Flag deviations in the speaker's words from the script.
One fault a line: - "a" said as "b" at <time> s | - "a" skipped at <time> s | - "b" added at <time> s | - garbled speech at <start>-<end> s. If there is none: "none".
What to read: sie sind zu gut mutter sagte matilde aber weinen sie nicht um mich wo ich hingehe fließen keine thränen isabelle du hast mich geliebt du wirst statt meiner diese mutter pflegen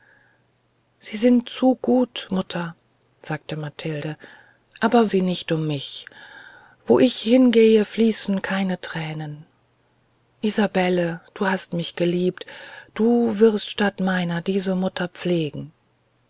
- "weinen" skipped at 5.1 s